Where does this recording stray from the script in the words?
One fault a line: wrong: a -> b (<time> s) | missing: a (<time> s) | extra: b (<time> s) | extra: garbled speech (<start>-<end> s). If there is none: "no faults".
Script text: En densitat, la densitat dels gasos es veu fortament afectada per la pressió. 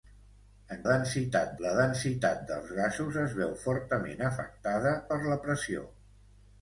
no faults